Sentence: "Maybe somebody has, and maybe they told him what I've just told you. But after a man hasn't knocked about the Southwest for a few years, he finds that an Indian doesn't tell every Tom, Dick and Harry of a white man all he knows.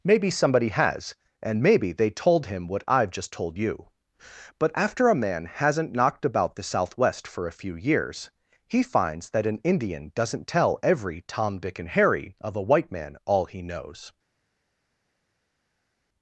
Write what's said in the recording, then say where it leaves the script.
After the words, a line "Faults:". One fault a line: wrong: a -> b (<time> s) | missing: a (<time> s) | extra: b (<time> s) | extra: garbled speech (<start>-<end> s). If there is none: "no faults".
"Maybe somebody has, and maybe they told him what I've just told you. But after a man hasn't knocked about the Southwest for a few years, he finds that an Indian doesn't tell every Tom, Dick and Harry of a white man all he knows.
Faults:
no faults